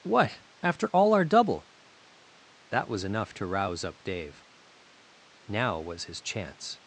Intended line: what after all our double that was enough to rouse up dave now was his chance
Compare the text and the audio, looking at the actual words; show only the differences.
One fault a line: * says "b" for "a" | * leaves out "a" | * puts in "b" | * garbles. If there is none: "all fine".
all fine